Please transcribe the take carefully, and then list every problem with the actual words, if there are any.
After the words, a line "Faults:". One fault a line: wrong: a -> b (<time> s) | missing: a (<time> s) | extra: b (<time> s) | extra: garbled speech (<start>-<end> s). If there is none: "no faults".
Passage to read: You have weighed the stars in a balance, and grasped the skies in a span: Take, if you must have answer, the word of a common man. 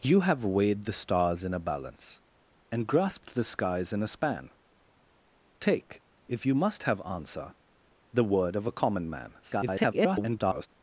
You have weighed the stars in a balance, and grasped the skies in a span: Take, if you must have answer, the word of a common man. [garbled]
Faults:
extra: garbled speech (9.4-10.7 s)